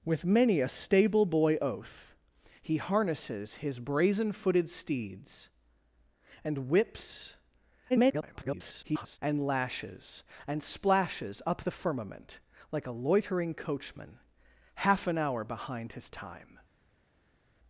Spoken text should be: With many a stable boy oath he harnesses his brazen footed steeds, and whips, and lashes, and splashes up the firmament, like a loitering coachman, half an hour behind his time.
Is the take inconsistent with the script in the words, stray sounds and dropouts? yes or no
yes